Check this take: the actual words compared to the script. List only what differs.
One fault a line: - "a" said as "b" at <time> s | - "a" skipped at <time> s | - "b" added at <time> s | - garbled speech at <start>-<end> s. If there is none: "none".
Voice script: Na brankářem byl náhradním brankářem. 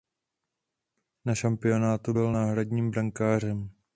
- "brankářem" said as "šampionátu" at 1.4 s